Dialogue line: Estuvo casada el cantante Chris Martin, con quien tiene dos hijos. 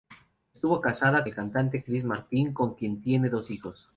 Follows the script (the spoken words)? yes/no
yes